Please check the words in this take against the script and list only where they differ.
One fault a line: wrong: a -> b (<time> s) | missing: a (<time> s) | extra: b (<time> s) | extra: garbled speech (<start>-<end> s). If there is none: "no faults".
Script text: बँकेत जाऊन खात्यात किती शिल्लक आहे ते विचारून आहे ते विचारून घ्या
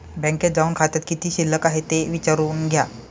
missing: आहे ते विचारून (2.7 s)